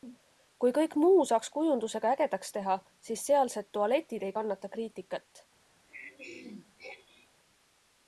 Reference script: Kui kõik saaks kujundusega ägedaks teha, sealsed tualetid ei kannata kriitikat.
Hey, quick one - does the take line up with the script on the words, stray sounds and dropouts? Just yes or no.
no